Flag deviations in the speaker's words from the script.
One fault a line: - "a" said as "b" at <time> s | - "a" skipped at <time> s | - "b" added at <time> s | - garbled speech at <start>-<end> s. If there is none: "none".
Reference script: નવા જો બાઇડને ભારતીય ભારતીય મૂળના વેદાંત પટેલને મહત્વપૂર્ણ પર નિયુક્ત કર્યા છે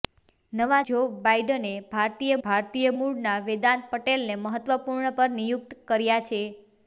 none